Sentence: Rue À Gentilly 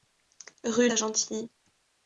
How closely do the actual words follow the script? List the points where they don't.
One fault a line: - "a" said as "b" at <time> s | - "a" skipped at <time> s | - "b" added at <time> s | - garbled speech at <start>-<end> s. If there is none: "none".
none